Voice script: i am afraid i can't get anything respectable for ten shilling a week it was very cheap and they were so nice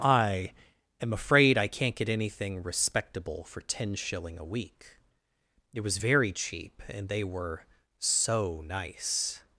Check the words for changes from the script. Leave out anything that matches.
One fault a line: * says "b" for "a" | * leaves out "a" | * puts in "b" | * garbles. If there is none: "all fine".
all fine